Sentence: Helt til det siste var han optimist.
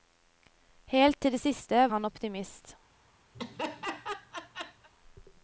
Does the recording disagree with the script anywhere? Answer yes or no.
yes